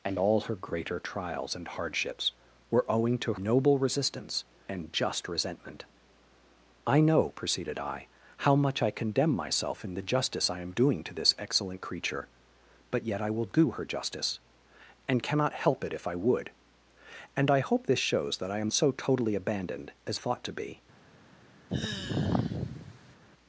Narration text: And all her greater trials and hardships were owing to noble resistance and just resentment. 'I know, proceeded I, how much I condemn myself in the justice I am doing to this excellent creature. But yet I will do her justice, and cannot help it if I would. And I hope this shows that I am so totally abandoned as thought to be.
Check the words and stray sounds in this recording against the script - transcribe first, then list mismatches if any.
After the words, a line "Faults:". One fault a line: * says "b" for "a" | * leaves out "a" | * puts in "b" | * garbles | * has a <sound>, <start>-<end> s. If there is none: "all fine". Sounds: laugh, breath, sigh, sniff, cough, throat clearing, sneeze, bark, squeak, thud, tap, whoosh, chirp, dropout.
And all her greater trials and hardships were owing to noble resistance and just resentment. 'I know, proceeded I, how much I condemn myself in the justice I am doing to this excellent creature. But yet I will do her justice, and cannot help it if I would. And I hope this shows that I am so totally abandoned as thought to be.
Faults:
* has a sigh, 21.7-23.2 s